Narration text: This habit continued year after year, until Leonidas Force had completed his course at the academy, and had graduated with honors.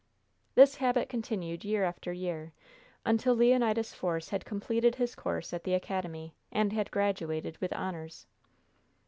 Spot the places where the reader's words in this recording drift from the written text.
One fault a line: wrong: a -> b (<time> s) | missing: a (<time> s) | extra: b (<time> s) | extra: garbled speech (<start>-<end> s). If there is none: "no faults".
no faults